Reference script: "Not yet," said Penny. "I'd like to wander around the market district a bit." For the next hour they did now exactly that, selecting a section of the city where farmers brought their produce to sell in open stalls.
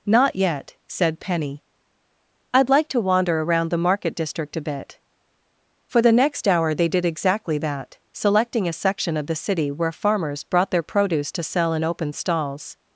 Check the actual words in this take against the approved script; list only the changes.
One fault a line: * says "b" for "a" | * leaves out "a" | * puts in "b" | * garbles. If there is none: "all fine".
* leaves out "now"